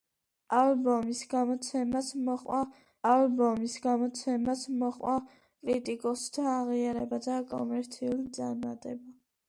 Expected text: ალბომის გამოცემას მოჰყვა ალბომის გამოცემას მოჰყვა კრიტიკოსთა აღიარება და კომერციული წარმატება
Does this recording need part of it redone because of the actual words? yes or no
no